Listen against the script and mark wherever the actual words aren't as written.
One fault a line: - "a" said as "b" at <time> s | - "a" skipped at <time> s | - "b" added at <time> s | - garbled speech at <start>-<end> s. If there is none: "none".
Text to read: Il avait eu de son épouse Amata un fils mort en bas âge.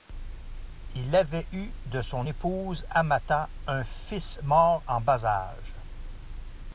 none